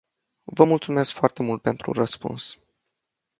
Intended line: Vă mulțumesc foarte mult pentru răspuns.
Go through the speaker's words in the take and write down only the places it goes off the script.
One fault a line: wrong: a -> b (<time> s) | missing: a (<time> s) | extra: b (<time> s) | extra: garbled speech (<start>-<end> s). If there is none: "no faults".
no faults